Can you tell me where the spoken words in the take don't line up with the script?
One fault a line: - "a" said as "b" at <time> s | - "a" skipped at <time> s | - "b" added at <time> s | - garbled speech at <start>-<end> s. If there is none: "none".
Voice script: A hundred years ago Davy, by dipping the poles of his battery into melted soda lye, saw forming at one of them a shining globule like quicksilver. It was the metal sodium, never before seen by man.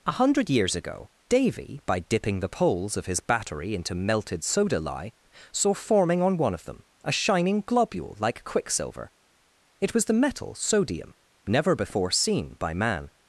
- "at" said as "on" at 6.2 s